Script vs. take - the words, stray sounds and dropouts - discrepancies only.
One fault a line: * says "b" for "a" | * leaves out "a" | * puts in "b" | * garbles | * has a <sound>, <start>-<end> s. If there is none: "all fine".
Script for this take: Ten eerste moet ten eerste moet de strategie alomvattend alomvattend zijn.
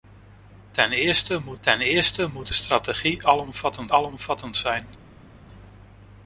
all fine